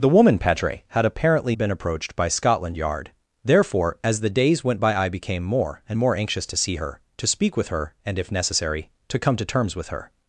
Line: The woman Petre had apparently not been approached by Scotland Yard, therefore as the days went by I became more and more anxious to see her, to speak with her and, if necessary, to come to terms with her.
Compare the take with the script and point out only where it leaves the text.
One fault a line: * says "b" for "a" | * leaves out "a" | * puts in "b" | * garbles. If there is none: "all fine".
* leaves out "not"